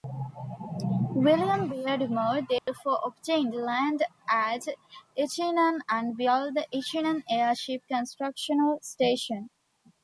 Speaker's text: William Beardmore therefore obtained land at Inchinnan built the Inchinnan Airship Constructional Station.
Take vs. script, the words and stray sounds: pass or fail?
fail